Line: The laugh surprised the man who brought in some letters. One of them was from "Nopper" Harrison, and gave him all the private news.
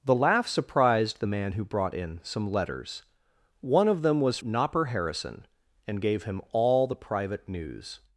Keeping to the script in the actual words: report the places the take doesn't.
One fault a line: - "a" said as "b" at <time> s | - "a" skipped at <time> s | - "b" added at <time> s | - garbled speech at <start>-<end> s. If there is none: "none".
- "from" skipped at 4.4 s